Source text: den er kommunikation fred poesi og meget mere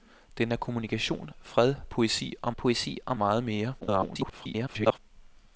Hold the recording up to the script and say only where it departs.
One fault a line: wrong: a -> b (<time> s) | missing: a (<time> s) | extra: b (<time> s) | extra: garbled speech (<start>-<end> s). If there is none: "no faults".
extra: poesi og (2.6 s)
extra: garbled speech (3.8-5.0 s)